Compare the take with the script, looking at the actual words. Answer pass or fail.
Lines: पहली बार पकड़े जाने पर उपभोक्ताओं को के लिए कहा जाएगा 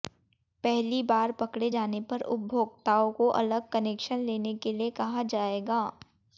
fail